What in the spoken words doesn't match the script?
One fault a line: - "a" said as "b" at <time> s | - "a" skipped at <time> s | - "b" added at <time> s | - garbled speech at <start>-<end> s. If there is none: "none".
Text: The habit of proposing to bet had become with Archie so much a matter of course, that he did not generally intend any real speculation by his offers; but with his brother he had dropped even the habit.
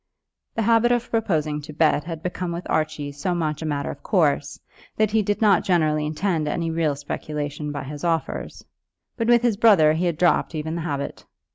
none